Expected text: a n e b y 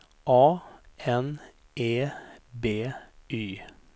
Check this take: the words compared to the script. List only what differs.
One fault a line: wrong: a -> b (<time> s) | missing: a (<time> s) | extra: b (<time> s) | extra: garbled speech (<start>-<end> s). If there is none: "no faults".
no faults